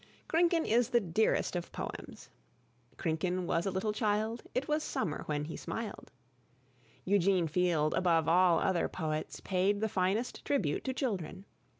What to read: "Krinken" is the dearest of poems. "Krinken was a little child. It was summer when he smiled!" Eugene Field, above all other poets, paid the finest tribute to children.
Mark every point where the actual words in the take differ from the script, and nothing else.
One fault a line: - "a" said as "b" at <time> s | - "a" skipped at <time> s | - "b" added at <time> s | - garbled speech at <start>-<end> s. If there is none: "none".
none